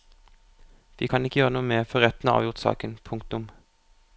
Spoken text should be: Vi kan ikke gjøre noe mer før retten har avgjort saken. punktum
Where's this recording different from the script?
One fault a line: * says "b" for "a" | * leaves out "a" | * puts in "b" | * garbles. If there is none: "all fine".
all fine